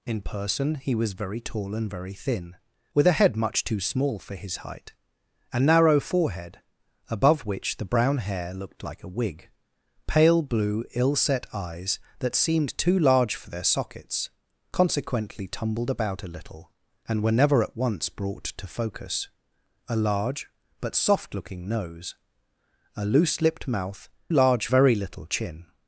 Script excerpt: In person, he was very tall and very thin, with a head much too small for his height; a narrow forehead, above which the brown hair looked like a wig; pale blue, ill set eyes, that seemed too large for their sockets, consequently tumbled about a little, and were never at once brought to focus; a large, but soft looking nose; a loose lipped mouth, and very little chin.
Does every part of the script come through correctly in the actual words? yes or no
no